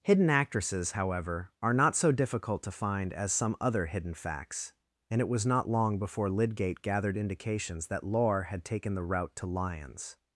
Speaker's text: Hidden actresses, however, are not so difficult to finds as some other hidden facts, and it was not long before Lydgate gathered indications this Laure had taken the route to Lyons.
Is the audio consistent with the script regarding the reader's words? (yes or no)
no